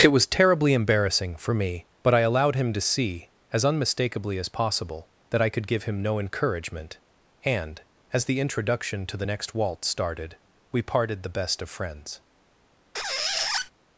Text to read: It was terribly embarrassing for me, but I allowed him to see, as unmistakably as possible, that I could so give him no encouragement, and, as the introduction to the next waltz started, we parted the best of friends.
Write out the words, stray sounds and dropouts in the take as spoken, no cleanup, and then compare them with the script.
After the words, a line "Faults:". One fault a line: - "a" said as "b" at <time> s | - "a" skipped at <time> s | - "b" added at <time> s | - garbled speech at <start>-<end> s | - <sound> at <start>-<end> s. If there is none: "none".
It was terribly embarrassing for me, but I allowed him to see, as unmistakably as possible, that I could give him no encouragement, and, as the introduction to the next waltz started, we parted the best of friends.
Faults:
- "so" skipped at 5.7 s
- squeak at 12.9-13.7 s